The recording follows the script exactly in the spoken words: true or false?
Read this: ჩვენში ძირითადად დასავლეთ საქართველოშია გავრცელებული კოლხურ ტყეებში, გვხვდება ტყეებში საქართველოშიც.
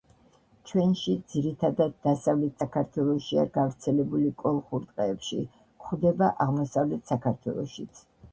false